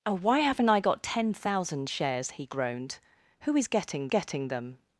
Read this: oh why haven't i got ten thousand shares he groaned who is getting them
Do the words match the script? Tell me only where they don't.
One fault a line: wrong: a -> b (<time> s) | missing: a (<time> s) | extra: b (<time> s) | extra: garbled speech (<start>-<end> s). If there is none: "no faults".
extra: getting (4.1 s)